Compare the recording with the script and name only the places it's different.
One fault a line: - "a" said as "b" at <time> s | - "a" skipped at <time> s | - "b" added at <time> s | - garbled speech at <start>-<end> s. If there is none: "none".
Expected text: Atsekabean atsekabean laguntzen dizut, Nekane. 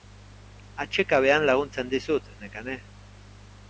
- "atsekabean" skipped at 1.5 s